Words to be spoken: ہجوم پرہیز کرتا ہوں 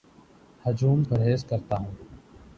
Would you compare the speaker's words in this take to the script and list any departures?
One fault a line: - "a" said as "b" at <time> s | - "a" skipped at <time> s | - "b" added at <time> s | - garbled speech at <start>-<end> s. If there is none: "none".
none